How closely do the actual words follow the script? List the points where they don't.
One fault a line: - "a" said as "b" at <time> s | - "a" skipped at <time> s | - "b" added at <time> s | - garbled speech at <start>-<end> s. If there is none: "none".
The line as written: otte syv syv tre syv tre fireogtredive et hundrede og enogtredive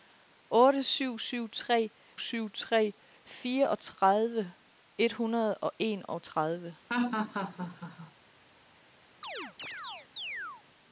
none